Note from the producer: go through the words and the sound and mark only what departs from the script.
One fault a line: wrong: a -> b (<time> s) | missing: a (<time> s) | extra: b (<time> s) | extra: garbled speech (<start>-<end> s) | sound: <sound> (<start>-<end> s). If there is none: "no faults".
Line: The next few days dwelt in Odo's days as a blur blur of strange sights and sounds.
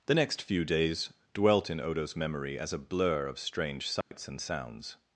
wrong: days -> memory (2.1 s)
missing: blur (3.3 s)
sound: dropout (4.0-4.1 s)